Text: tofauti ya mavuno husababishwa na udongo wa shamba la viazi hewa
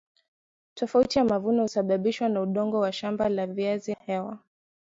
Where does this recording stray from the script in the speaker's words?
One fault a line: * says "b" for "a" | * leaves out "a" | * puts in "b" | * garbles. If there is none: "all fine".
all fine